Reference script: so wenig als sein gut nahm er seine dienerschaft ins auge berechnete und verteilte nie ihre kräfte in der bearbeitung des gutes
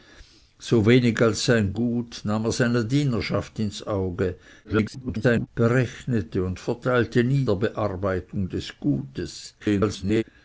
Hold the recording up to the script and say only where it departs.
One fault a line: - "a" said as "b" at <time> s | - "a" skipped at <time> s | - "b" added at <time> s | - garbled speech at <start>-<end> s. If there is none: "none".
- garbled speech at 4.6-5.5 s
- "ihre kräfte in" skipped at 7.4 s
- garbled speech at 9.6-10.2 s